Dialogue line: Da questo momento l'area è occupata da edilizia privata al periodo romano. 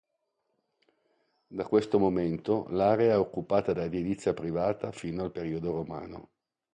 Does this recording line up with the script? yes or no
no